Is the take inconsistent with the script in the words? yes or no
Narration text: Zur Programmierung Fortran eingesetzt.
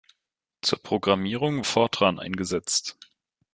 no